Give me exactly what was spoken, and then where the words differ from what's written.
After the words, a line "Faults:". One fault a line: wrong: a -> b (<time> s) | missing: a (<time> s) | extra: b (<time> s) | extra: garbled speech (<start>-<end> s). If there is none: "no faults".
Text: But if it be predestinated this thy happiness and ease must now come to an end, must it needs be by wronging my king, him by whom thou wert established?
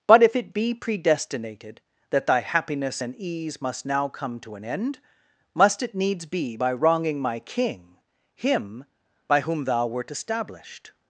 But if it be predestinated that thy happiness and ease must now come to an end, must it needs be by wronging my king, him by whom thou wert established?
Faults:
wrong: this -> that (2.1 s)